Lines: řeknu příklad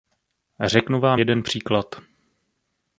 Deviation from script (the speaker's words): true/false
true